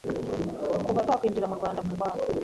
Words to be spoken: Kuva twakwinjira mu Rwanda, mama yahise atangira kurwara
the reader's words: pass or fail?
fail